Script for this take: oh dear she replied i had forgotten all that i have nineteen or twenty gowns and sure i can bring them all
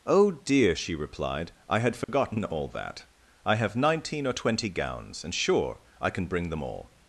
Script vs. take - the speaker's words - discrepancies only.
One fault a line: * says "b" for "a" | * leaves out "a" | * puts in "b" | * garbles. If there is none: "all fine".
all fine